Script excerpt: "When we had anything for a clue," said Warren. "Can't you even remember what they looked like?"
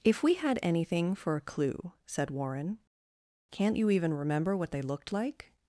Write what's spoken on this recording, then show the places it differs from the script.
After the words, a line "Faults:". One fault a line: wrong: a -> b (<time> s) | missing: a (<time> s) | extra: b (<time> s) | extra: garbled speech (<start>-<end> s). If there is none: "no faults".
"If we had anything for a clue," said Warren. "Can't you even remember what they looked like?"
Faults:
wrong: When -> If (0.0 s)